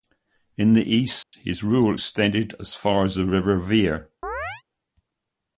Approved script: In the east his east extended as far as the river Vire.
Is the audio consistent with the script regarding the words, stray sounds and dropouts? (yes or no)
no